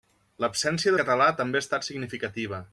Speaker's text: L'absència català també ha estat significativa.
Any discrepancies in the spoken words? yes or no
no